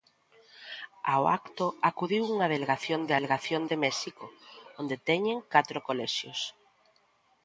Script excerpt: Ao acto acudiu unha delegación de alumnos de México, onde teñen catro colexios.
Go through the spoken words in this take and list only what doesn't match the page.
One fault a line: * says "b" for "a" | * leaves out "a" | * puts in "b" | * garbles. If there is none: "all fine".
* says "delegación" for "alumnos"